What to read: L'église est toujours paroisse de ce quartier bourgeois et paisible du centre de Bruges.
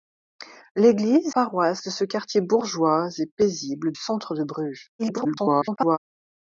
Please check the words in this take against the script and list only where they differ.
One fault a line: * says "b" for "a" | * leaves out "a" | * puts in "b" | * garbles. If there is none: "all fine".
* leaves out "est toujours"
* leaves out "du"
* garbles